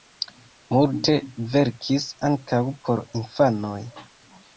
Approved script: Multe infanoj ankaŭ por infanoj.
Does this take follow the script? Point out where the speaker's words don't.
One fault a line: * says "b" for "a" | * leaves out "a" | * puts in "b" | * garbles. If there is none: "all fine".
* says "verkis" for "infanoj"